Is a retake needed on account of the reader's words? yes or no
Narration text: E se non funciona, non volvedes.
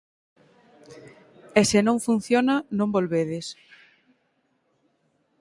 no